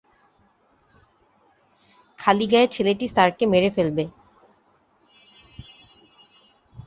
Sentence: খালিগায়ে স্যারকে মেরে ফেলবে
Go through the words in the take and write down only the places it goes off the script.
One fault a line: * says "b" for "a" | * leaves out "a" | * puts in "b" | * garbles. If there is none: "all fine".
* puts in "ছেলেটি"